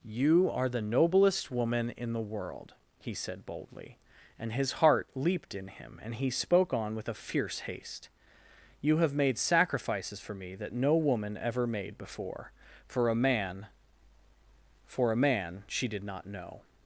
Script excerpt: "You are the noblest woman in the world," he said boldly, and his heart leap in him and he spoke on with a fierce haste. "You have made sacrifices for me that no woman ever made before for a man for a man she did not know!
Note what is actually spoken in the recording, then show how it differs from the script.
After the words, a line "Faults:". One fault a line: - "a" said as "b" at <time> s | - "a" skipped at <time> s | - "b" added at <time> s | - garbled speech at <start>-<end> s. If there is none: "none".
"You are the noblest woman in the world," he said boldly, and his heart leaped in him and he spoke on with a fierce haste. "You have made sacrifices for me that no woman ever made before for a man for a man she did not know!
Faults:
- "leap" said as "leaped" at 5.1 s